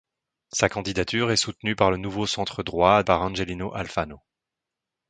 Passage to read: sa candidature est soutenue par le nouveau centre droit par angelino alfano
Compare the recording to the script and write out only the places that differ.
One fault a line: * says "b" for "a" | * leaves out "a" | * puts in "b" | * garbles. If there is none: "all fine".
all fine